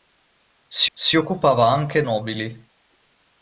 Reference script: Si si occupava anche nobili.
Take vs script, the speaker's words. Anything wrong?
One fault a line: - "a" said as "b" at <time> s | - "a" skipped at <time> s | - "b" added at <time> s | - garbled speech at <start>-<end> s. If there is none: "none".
none